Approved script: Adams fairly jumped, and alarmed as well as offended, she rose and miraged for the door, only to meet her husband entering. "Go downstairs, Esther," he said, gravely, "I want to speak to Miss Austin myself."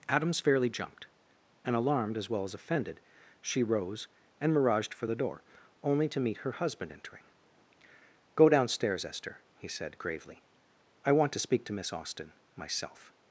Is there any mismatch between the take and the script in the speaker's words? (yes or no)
no